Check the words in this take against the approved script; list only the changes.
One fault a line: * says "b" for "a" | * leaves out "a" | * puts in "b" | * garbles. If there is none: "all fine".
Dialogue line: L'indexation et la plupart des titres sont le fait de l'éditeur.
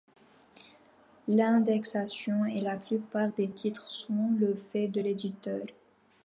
all fine